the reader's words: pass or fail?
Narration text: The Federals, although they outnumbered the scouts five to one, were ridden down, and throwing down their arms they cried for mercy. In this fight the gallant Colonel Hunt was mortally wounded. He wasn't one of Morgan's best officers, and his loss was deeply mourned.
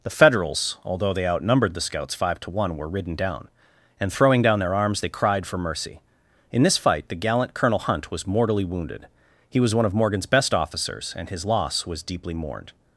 fail